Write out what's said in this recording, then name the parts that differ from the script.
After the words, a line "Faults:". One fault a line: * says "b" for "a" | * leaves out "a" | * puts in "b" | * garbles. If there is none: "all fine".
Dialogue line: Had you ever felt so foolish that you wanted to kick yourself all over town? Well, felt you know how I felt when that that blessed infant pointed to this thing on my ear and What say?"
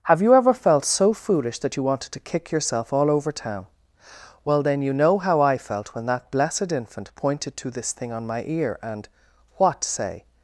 Have you ever felt so foolish that you wanted to kick yourself all over town? Well, then you know how I felt when that blessed infant pointed to this thing on my ear and What say?"
Faults:
* says "Have" for "Had"
* says "then" for "felt"
* leaves out "that"